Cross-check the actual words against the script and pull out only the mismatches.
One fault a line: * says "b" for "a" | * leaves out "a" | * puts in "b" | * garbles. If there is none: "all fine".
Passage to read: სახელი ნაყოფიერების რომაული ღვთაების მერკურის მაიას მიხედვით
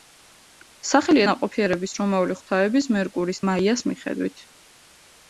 all fine